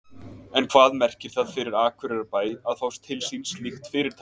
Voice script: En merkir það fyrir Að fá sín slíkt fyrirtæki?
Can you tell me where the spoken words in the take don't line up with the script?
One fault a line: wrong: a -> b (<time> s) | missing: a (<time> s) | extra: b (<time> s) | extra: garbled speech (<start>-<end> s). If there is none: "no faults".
extra: hvað (0.7 s)
extra: Akureyrarbæ (1.8 s)
extra: til (3.1 s)